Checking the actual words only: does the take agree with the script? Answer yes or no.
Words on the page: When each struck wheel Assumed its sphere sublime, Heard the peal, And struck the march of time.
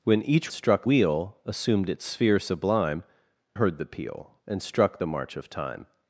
yes